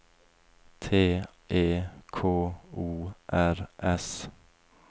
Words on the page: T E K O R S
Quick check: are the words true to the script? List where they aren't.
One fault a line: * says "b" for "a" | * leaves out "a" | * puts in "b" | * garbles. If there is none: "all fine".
all fine